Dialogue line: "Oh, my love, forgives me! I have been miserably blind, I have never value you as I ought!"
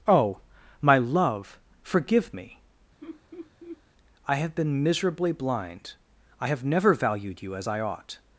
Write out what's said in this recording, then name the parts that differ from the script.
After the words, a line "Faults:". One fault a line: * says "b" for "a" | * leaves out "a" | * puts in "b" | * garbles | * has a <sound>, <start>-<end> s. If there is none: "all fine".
"Oh, my love, forgive me! I have been miserably blind, I have never valued you as I ought!"
Faults:
* says "forgive" for "forgives"
* has a laugh, 3.0-3.8 s
* says "valued" for "value"